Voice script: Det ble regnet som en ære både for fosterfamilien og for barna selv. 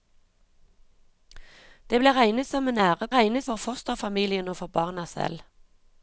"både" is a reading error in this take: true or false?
true